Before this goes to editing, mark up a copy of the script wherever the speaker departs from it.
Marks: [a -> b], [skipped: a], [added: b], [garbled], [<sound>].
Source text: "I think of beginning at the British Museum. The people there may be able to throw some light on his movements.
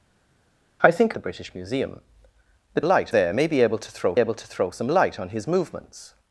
"I think [skipped: of beginning at] the British Museum. The [people -> light] there may be able to throw [added: able to throw] some light on his movements.